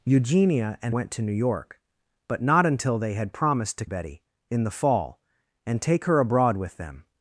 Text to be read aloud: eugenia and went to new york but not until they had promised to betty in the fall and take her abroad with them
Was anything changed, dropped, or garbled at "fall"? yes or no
no